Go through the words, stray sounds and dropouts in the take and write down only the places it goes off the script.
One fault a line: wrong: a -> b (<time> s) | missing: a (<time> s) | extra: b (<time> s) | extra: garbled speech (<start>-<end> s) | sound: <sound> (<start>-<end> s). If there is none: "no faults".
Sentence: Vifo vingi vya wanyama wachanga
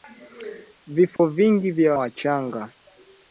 sound: dropout (1.2-1.2 s)
missing: wanyama (1.9 s)